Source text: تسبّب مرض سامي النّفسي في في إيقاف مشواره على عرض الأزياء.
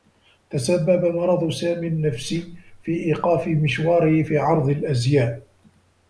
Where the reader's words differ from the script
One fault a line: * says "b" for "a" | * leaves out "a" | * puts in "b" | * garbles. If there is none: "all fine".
* leaves out "في"
* says "في" for "على"